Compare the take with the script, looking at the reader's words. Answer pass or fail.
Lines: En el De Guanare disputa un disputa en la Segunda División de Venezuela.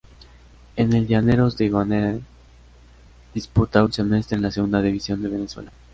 fail